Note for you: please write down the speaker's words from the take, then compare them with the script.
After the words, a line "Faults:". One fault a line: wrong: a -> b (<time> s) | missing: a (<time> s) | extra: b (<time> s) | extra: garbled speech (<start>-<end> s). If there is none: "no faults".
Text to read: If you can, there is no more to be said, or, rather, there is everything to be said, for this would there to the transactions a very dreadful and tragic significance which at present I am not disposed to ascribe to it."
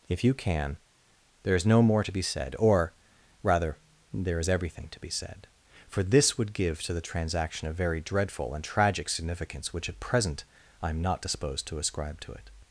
If you can, there is no more to be said, or, rather, there is everything to be said, for this would give to the transaction a very dreadful and tragic significance which at present I am not disposed to ascribe to it."
Faults:
wrong: there -> give (6.5 s)
wrong: transactions -> transaction (7.0 s)